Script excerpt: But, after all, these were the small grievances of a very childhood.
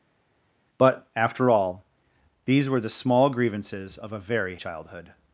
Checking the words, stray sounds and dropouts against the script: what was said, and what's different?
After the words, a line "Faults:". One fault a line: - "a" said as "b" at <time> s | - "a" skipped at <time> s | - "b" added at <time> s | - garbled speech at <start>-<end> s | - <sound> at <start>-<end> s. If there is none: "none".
But, after all, these were the small grievances of a very childhood.
Faults:
none